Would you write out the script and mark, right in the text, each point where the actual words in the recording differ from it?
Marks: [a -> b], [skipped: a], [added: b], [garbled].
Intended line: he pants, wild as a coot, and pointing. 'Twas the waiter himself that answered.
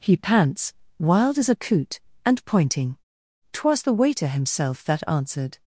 he pants, wild as a coot, and pointing. 'Twas the waiter himself that answered.